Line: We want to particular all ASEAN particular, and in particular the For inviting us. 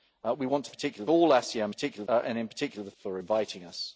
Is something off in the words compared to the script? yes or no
no